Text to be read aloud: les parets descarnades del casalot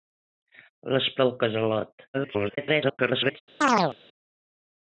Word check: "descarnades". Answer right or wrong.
wrong